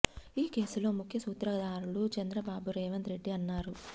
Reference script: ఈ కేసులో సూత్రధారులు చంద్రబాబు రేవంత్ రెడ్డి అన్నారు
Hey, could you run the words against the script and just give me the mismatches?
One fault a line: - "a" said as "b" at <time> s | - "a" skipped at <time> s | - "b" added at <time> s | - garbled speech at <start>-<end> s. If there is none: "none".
- "ముఖ్య" added at 0.9 s